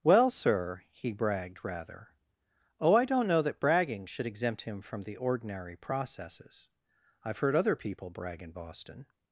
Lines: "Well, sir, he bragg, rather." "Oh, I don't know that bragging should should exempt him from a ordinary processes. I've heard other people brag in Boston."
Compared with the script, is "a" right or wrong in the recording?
wrong